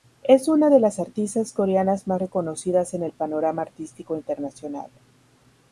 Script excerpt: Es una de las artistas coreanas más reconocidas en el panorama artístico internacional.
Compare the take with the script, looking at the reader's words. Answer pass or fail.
pass